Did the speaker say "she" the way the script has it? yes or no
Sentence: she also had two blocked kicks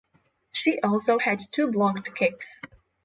yes